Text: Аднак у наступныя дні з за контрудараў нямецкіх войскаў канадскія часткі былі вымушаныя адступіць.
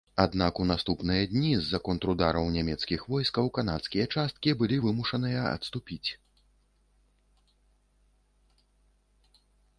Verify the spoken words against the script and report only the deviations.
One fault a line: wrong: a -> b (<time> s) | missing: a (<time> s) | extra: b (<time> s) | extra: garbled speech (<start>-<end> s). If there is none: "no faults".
no faults